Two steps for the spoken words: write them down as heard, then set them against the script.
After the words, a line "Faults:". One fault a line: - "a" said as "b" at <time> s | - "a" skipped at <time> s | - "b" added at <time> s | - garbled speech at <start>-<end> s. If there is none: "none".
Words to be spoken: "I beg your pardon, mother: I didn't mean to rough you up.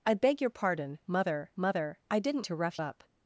"I beg your pardon, mother mother: I didn't to rough up.
Faults:
- "mother" added at 1.5 s
- "mean" skipped at 2.5 s
- "you" skipped at 2.8 s